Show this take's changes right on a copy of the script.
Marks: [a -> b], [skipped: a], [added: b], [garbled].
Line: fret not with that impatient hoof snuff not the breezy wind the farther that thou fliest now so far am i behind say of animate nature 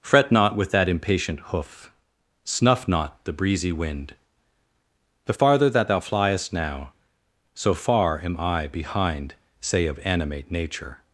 fret not with that impatient hoof snuff not the breezy wind the farther that thou fliest now so far am i behind say of animate nature